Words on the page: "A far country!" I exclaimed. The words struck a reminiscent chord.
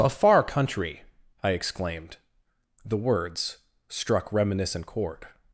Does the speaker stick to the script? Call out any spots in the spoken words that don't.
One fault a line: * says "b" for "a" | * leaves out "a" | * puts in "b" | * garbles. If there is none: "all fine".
* leaves out "a"